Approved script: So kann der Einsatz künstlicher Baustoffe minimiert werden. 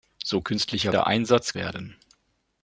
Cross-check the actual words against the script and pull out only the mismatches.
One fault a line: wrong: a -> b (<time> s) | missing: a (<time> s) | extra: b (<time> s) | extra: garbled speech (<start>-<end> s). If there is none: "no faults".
wrong: kann -> künstlicher (0.4 s)
missing: künstlicher Baustoffe minimiert (1.6 s)